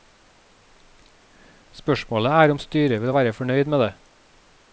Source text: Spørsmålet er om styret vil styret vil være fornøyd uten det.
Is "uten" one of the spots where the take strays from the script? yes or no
yes